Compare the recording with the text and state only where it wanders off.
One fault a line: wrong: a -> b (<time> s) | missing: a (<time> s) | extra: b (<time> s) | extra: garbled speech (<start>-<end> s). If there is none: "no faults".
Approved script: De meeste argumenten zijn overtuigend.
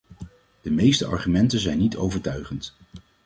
extra: niet (1.8 s)